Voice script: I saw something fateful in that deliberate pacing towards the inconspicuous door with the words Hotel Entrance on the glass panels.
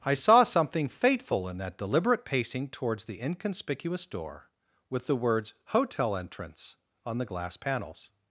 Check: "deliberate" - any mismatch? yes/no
no